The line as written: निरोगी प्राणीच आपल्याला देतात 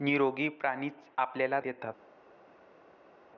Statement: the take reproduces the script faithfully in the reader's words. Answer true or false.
true